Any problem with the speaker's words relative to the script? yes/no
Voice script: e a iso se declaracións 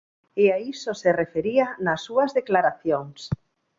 yes